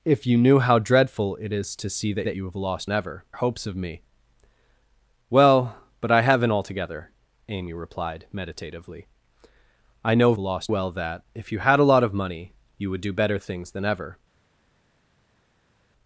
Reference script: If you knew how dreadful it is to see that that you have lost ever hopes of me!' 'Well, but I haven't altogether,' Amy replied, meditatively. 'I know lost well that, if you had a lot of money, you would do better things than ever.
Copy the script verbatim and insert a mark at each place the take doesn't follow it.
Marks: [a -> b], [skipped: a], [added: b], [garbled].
If you knew how dreadful it is to see that that you have lost ever hopes of me!' 'Well, but I haven't altogether,' Amy replied, meditatively. 'I know lost well that, if you had a lot of money, you would do better things than ever.